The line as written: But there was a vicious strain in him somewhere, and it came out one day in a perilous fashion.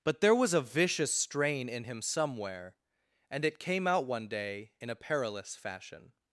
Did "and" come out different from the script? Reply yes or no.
no